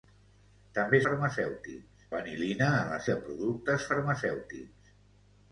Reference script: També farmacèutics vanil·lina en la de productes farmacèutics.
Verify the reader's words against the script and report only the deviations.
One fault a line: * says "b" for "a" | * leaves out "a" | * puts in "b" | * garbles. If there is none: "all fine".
all fine